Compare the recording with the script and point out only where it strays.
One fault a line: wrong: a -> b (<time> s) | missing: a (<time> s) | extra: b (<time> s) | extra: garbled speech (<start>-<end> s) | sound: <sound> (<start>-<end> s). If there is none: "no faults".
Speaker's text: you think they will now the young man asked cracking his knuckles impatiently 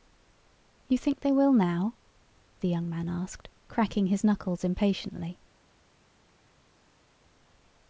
no faults